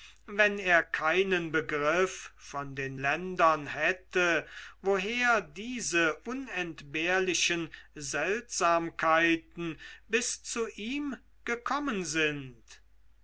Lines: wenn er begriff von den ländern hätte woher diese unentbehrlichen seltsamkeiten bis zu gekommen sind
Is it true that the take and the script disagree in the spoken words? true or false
true